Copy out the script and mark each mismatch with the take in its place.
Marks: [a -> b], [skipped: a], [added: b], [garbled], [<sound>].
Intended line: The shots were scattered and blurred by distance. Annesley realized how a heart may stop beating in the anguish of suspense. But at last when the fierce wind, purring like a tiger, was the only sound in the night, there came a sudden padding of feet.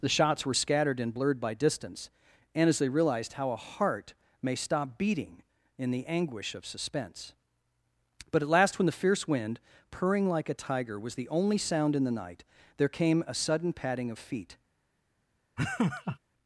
The shots were scattered and blurred by distance. [Annesley -> And as they] realized how a heart may stop beating in the anguish of suspense. But at last when the fierce wind, purring like a tiger, was the only sound in the night, there came a sudden padding of feet. [laugh]